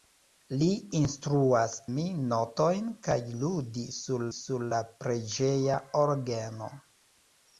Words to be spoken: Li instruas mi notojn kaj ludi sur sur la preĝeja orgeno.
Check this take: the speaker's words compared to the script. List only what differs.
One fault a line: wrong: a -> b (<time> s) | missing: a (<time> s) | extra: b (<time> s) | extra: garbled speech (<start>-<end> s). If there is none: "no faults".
no faults